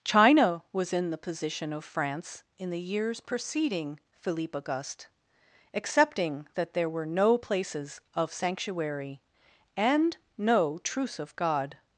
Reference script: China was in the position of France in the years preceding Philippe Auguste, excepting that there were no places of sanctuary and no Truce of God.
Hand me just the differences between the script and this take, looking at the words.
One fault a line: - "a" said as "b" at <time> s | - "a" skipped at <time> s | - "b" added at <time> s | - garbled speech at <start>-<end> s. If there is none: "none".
none